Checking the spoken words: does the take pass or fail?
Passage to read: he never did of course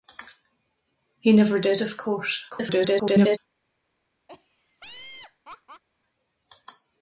fail